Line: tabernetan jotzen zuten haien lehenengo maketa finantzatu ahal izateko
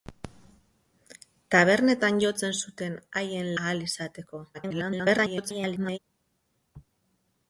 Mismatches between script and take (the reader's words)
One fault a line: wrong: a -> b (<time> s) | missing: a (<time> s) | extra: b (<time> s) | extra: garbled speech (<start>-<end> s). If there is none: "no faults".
missing: lehenengo maketa finantzatu (3.5 s)
extra: garbled speech (4.5-6.0 s)